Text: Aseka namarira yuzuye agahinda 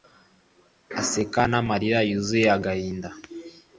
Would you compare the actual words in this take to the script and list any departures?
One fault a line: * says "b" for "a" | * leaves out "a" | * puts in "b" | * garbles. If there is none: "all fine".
all fine